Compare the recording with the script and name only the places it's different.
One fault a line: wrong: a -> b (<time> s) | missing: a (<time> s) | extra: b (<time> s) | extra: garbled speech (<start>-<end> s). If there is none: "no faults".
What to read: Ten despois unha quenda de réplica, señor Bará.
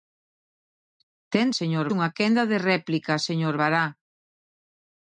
wrong: despois -> señor (1.6 s)